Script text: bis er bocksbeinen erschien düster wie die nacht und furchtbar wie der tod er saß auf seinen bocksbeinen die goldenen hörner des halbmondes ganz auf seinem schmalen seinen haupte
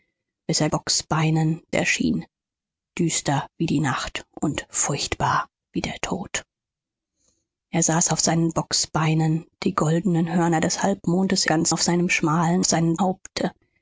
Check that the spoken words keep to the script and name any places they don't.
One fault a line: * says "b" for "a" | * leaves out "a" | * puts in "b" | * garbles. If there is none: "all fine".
all fine